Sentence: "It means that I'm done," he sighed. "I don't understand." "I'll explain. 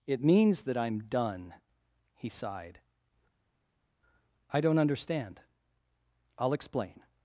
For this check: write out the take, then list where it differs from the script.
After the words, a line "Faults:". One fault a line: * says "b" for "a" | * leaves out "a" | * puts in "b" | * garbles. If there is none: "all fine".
"It means that I'm done," he sighed. "I don't understand." "I'll explain.
Faults:
all fine